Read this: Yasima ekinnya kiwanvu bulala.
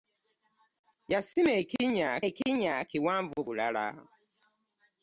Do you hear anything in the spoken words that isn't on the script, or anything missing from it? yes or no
yes